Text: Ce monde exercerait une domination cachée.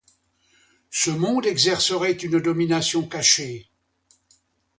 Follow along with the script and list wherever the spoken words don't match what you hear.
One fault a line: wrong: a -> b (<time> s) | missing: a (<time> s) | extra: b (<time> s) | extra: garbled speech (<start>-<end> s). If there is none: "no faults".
no faults